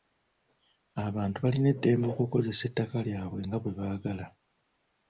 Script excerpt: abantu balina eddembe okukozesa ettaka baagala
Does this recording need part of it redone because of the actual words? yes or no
yes